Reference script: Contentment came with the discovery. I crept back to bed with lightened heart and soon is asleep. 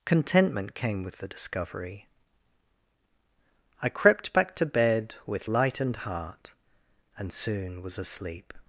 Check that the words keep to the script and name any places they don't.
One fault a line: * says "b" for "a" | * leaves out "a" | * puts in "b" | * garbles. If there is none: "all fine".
* says "was" for "is"